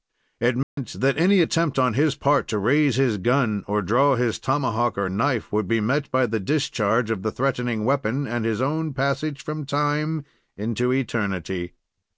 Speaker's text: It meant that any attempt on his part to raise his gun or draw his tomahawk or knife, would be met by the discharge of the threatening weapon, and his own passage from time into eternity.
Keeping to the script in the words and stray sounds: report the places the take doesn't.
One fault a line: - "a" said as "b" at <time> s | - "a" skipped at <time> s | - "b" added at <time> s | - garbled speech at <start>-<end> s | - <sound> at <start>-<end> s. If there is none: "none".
- dropout at 0.6-0.8 s